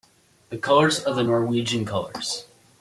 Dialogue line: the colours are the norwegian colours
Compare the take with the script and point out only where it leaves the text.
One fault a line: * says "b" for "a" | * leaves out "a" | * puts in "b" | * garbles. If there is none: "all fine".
all fine